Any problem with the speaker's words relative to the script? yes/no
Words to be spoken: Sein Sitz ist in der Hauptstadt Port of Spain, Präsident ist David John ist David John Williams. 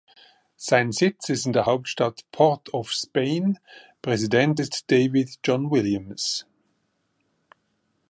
yes